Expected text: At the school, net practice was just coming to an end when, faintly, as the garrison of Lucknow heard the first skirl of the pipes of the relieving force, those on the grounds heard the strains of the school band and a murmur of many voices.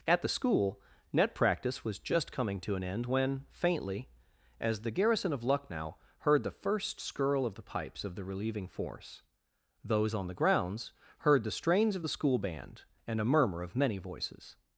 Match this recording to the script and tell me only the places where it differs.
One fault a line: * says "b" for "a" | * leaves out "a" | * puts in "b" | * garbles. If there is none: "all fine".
all fine